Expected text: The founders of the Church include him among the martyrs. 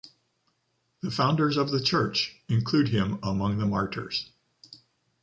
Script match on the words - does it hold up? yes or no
yes